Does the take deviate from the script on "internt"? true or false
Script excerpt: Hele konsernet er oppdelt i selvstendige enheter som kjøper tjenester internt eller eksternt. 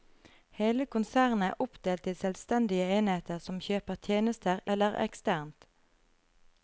true